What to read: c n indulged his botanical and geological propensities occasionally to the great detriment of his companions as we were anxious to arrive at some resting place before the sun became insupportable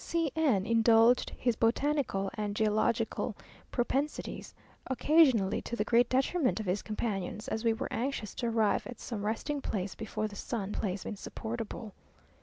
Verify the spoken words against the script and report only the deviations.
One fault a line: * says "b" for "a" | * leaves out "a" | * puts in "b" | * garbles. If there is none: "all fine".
* says "place" for "became"